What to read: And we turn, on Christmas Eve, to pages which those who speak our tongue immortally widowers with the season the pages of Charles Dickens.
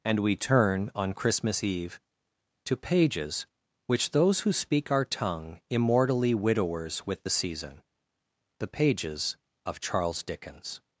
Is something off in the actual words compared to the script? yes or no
no